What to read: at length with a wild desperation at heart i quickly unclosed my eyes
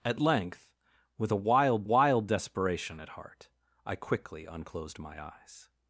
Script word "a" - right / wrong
right